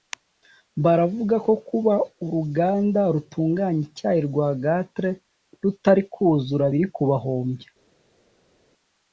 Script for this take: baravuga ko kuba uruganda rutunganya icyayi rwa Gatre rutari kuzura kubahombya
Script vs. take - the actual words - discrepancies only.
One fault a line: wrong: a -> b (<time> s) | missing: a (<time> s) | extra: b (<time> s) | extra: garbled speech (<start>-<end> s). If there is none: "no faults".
extra: biri (6.7 s)